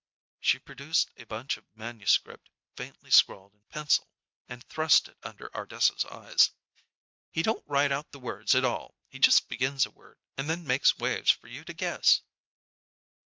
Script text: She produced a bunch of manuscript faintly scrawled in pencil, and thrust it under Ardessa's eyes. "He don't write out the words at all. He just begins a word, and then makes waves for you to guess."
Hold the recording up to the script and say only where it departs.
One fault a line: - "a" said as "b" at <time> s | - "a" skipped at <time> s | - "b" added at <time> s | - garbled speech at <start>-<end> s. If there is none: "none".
none